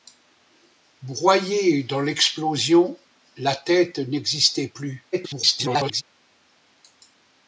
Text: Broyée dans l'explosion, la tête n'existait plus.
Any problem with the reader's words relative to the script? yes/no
yes